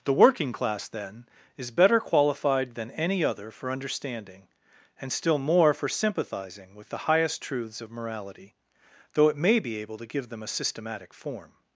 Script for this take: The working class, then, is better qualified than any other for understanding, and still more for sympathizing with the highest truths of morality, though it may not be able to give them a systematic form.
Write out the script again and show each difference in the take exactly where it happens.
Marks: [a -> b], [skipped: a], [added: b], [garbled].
The working class, then, is better qualified than any other for understanding, and still more for sympathizing with the highest truths of morality, though it may [skipped: not] be able to give them a systematic form.